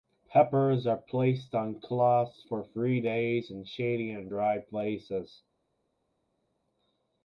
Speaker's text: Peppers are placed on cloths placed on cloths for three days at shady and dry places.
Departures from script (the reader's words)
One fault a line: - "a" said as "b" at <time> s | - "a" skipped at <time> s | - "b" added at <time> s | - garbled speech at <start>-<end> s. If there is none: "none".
- "placed on cloths" skipped at 2.4 s
- "at" said as "in" at 3.5 s